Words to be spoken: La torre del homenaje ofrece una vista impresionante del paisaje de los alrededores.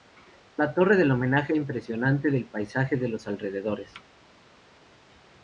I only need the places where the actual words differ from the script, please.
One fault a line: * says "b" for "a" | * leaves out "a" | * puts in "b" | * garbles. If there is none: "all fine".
* leaves out "ofrece una vista"